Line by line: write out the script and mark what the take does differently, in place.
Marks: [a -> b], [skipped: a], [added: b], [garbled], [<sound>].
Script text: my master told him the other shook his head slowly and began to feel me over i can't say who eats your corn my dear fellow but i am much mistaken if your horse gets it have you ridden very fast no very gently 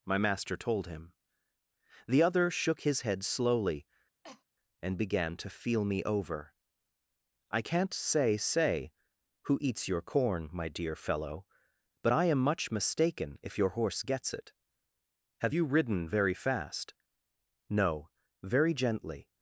my master told him the other shook his head slowly [cough] and began to feel me over i can't say [added: say] who eats your corn my dear fellow but i am much mistaken if your horse gets it have you ridden very fast no very gently